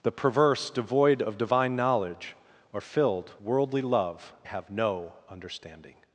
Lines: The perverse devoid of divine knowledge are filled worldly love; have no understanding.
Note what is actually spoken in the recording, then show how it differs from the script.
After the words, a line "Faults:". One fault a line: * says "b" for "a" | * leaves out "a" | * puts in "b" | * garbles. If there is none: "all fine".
The perverse devoid of divine knowledge are filled worldly love; have no understanding.
Faults:
all fine